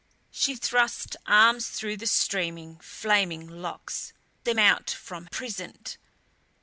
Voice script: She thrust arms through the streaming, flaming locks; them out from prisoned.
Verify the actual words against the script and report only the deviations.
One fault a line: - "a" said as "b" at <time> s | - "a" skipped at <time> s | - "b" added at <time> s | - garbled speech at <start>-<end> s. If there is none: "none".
none